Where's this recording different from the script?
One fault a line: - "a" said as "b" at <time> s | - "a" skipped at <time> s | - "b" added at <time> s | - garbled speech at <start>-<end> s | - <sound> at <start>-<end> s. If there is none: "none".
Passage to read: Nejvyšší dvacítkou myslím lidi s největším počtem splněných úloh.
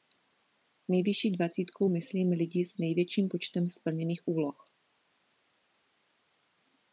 none